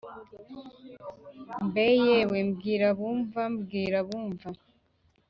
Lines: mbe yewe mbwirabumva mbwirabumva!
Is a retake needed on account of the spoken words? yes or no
no